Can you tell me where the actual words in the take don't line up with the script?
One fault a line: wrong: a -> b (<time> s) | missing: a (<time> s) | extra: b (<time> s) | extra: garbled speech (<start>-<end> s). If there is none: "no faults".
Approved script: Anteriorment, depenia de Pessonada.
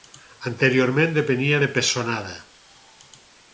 no faults